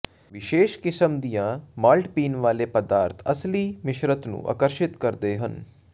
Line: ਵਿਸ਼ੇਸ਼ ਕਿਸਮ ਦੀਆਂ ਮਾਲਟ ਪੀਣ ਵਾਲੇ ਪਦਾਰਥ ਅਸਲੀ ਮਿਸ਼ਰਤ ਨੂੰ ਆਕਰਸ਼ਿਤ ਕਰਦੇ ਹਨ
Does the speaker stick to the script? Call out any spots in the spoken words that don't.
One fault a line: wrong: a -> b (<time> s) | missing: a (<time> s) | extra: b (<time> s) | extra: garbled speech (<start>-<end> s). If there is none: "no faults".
no faults